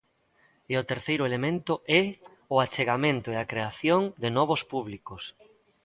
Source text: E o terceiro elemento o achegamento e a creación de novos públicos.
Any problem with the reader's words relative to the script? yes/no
yes